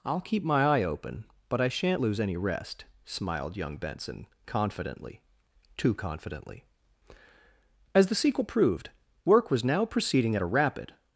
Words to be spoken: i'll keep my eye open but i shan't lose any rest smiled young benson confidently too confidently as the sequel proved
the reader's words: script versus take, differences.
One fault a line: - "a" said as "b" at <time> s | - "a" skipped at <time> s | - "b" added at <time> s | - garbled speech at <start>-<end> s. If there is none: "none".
- "work was now proceeding at a rapid" added at 9.2 s